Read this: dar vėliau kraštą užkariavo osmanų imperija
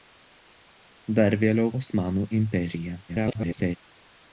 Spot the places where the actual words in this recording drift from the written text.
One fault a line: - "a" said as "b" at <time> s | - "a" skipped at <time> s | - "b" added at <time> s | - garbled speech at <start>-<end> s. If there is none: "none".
- "kraštą užkariavo" skipped at 1.7 s
- garbled speech at 3.1-3.8 s